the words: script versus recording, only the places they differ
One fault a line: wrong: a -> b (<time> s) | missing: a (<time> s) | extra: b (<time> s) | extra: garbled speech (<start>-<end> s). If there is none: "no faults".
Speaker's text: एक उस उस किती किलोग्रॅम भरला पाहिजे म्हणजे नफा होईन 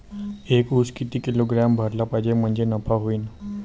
missing: उस (0.9 s)